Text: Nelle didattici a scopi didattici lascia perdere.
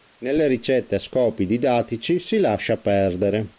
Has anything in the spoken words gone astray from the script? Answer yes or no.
yes